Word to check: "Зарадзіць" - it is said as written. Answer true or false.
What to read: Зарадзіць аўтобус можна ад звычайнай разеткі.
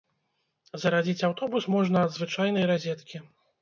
true